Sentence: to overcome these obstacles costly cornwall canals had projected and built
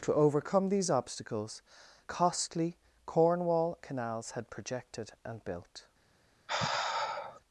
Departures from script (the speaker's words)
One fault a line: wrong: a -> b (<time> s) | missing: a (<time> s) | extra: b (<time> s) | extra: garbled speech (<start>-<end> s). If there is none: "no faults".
no faults